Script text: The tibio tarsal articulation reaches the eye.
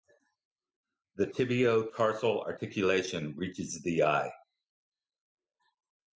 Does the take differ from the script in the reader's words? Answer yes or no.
no